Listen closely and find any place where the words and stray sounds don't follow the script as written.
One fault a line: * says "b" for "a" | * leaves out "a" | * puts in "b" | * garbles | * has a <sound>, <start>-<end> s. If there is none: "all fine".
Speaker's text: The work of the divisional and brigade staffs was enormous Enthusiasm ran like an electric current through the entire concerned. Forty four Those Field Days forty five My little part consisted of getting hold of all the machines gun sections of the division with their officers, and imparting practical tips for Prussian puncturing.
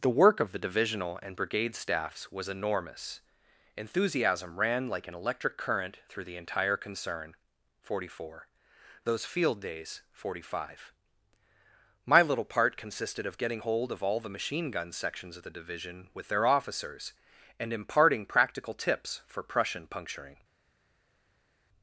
* says "concern" for "concerned"
* says "machine" for "machines"